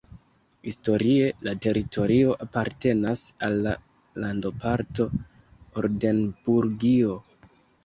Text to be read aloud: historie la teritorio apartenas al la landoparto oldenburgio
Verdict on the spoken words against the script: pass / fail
pass